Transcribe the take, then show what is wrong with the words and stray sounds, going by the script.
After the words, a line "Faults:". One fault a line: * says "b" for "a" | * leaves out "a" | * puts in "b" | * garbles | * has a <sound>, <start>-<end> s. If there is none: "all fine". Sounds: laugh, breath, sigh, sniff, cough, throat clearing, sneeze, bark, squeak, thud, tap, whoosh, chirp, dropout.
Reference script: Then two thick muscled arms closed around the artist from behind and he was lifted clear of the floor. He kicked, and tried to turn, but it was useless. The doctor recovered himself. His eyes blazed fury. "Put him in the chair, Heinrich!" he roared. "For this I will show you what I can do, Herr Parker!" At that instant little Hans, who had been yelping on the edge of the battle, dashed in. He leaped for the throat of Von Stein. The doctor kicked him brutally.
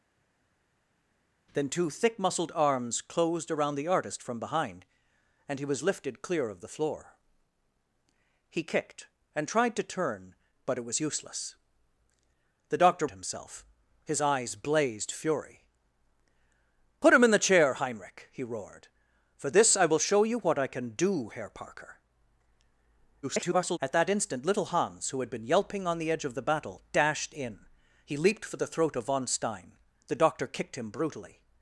Then two thick muscled arms closed around the artist from behind and he was lifted clear of the floor. He kicked, and tried to turn, but it was useless. The doctor himself. His eyes blazed fury. "Put him in the chair, Heinrich!" he roared. "For this I will show you what I can do, Herr Parker!" [garbled] At that instant little Hans, who had been yelping on the edge of the battle, dashed in. He leaped for the throat of Von Stein. The doctor kicked him brutally.
Faults:
* leaves out "recovered"
* garbles